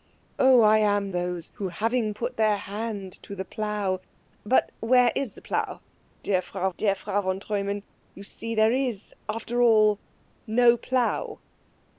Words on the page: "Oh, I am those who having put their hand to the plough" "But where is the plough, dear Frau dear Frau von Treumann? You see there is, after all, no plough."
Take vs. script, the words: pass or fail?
pass